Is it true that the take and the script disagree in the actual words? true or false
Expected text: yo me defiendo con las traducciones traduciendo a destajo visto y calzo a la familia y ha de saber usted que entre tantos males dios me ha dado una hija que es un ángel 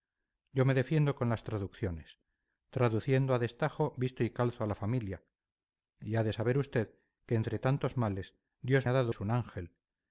true